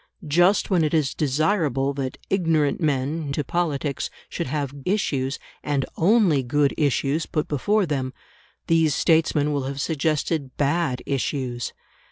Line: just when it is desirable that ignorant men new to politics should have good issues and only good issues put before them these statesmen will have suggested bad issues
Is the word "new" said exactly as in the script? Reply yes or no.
no